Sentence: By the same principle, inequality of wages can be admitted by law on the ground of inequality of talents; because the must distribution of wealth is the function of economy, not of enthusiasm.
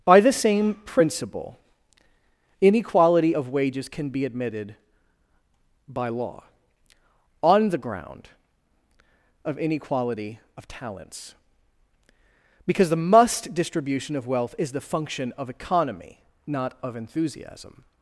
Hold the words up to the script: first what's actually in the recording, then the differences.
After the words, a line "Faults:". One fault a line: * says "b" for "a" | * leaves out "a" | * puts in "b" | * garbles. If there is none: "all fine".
By the same principle, inequality of wages can be admitted by law on the ground of inequality of talents; because the must distribution of wealth is the function of economy, not of enthusiasm.
Faults:
all fine